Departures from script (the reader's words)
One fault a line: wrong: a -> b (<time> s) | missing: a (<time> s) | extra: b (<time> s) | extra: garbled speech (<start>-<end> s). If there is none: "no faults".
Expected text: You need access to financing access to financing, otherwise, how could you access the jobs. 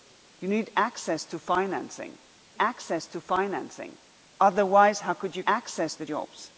no faults